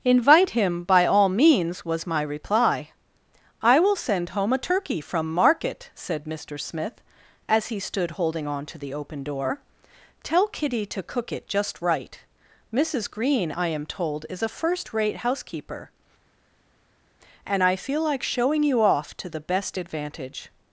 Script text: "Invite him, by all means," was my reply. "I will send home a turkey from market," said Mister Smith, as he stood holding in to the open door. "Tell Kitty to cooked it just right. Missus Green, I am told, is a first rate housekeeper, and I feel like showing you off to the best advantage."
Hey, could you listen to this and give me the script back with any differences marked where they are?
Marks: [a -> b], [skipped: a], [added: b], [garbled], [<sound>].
"Invite him, by all means," was my reply. "I will send home a turkey from market," said Mister Smith, as he stood holding [in -> on] to the open door. "Tell Kitty to [cooked -> cook] it just right. Missus Green, I am told, is a first rate housekeeper, and I feel like showing you off to the best advantage."